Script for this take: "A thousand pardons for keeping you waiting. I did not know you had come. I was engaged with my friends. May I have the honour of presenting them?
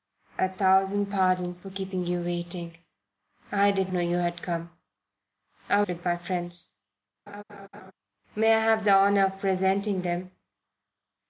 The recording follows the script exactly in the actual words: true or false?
false